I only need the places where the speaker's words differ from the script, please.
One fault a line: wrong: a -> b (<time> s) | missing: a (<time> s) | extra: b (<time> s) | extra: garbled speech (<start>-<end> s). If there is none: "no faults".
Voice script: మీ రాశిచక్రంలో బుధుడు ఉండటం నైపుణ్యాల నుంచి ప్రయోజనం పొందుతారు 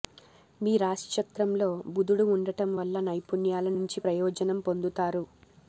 extra: వల్ల (2.8 s)